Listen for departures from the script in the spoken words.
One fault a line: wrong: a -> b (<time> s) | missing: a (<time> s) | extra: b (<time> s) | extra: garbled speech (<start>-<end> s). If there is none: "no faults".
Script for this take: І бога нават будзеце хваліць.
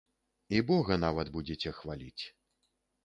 no faults